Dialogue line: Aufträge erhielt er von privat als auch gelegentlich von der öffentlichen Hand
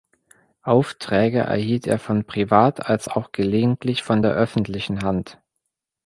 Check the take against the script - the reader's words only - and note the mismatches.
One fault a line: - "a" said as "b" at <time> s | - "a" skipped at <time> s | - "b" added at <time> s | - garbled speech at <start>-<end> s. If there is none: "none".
none